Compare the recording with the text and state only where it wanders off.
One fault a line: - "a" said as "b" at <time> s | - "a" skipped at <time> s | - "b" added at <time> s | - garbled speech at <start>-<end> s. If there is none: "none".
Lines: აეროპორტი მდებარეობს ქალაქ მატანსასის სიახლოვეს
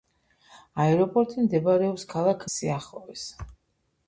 - "მატანსასის" skipped at 2.5 s